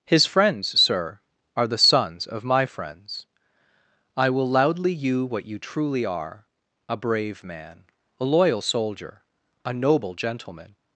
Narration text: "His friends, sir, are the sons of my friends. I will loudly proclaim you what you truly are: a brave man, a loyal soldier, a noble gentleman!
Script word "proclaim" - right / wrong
wrong